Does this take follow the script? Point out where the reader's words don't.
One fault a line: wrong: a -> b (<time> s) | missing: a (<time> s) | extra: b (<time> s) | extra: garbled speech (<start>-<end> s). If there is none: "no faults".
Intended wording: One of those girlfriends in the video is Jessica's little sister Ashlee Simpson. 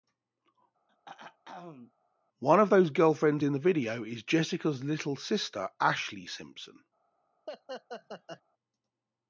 no faults